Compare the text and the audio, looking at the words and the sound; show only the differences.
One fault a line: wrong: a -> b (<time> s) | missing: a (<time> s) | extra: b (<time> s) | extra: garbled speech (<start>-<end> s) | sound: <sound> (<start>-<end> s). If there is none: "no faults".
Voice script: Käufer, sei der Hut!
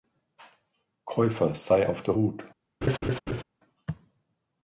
extra: auf (1.9 s)
sound: laugh (2.8-3.4 s)